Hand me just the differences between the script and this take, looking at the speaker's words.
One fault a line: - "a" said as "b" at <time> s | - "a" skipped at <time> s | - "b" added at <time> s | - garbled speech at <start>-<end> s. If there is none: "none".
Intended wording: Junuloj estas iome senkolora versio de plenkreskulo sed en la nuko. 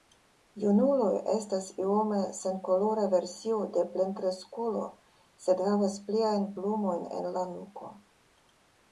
- "havas pliajn plumojn" added at 5.7 s